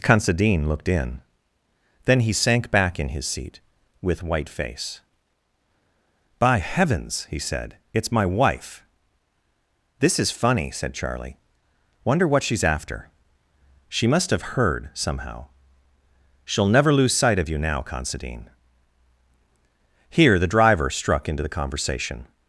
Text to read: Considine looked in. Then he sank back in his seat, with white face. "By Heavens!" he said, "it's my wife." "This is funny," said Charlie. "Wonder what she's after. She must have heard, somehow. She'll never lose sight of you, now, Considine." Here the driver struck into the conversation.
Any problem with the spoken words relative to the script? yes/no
no